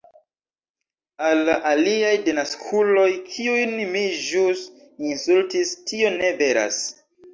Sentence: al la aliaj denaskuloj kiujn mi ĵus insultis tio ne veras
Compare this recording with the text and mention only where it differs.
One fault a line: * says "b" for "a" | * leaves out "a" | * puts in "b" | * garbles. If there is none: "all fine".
all fine